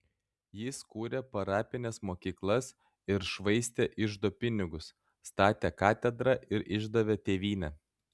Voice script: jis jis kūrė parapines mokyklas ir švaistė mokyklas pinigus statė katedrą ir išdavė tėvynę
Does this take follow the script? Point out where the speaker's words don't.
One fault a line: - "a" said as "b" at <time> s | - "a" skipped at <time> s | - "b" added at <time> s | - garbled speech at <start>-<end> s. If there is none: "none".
- "jis" skipped at 0.8 s
- "mokyklas" said as "iždo" at 4.1 s